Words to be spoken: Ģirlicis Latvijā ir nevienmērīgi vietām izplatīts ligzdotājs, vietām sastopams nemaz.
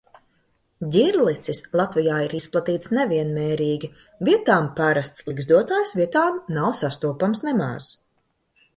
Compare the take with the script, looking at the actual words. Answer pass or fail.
fail